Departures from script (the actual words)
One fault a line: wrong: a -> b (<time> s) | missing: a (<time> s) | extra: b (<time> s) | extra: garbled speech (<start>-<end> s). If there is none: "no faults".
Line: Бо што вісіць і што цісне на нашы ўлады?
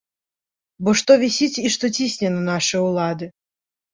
no faults